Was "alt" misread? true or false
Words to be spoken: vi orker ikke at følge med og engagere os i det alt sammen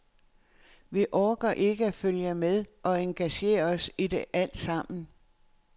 false